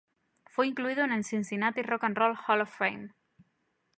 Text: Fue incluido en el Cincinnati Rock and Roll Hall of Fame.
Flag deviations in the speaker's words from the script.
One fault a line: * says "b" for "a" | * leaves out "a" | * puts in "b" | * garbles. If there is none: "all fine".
all fine